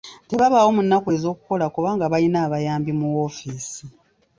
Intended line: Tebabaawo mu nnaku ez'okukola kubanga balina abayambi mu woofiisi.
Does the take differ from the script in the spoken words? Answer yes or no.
no